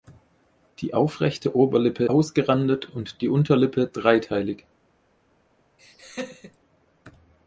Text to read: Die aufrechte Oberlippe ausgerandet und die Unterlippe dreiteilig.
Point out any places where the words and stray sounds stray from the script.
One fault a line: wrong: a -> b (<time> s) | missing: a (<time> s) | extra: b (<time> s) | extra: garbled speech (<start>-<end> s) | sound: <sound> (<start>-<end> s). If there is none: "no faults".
sound: laugh (5.8-6.6 s)